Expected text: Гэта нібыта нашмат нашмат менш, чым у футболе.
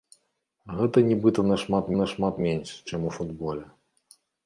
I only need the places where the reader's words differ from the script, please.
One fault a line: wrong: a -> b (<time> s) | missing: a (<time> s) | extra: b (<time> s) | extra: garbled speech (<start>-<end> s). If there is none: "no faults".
no faults